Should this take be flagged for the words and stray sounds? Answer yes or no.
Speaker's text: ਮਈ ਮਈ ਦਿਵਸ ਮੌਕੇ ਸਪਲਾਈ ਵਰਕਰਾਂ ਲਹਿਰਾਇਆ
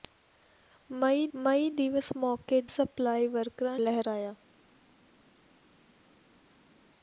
no